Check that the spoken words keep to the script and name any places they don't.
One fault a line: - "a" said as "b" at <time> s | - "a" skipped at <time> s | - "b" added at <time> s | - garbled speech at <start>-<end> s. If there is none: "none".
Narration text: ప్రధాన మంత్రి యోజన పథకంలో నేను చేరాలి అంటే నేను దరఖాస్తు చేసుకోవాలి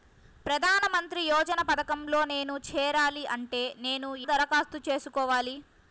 none